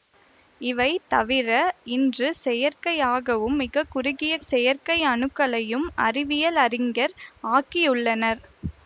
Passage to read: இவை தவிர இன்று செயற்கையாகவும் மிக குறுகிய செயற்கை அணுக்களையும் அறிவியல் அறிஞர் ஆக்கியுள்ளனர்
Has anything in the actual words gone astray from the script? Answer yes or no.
no